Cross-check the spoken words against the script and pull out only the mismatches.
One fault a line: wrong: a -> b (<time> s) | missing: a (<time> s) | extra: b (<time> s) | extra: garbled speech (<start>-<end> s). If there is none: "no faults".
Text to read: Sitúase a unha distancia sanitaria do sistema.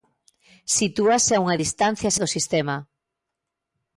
missing: sanitaria (2.1 s)